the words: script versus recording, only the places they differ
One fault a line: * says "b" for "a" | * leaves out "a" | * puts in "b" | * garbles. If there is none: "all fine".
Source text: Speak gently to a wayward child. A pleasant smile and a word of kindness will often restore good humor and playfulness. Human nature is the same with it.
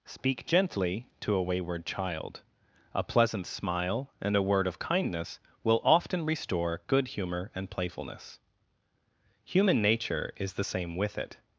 all fine